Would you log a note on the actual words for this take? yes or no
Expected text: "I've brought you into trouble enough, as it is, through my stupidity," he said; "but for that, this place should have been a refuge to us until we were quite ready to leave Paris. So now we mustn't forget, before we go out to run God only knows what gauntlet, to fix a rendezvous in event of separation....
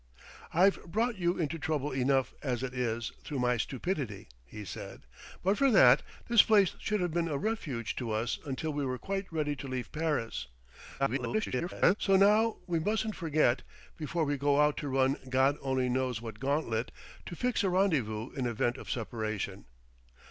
yes